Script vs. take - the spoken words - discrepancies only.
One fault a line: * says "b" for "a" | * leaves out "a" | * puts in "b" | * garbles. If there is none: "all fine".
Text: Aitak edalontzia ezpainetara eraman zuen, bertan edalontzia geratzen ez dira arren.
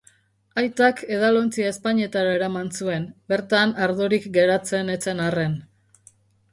* says "ardorik" for "edalontzia"
* says "zen" for "dira"